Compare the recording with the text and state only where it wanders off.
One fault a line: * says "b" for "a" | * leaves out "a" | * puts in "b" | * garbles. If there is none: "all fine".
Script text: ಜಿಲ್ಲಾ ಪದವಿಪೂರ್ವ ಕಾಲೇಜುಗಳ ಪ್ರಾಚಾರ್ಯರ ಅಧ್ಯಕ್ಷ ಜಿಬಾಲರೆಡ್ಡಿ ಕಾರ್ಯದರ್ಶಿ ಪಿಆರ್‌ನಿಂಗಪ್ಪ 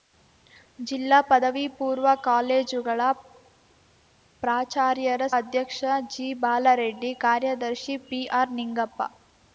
all fine